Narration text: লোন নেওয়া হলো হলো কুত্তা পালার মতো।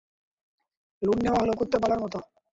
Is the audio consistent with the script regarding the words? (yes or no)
no